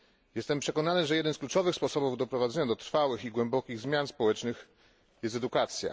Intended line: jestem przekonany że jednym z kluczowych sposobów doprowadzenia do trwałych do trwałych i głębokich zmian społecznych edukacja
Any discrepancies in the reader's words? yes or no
yes